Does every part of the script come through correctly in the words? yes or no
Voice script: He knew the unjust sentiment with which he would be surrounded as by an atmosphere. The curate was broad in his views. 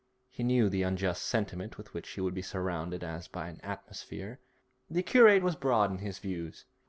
yes